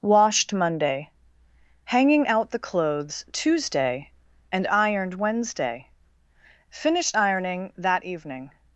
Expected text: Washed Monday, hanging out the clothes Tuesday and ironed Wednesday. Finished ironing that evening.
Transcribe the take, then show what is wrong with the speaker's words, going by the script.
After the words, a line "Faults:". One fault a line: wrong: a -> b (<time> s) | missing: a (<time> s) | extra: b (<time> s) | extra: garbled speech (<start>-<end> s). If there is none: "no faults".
Washed Monday, hanging out the clothes Tuesday and ironed Wednesday. Finished ironing that evening.
Faults:
no faults